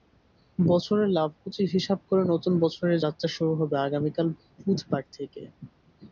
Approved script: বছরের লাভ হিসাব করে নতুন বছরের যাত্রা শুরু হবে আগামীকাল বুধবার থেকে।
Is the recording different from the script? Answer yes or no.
yes